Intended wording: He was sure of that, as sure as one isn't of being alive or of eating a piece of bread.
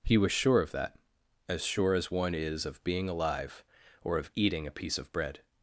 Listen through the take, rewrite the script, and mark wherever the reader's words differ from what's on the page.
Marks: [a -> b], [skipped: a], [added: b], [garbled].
He was sure of that, as sure as one [isn't -> is] of being alive or of eating a piece of bread.